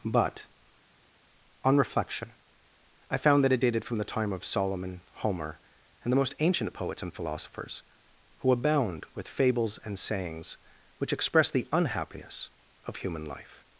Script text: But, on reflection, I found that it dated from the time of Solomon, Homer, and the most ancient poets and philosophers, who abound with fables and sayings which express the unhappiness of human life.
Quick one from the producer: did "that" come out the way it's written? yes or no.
yes